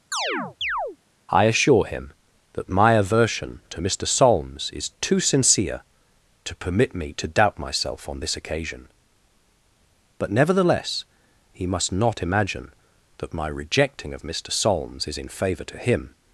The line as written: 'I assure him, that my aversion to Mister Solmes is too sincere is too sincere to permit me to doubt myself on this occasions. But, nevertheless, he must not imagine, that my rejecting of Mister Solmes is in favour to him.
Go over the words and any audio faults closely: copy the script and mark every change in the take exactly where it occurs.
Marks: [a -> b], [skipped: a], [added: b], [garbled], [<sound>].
[chirp] 'I assure him, that my aversion to Mister Solmes is too sincere [skipped: is too sincere] to permit me to doubt myself on this [occasions. -> occasion] But, nevertheless, he must not imagine, that my rejecting of Mister Solmes is in favour to him.